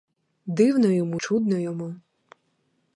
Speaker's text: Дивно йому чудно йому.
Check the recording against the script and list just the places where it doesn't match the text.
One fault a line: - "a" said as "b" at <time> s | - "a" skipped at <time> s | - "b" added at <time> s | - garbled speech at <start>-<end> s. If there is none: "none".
none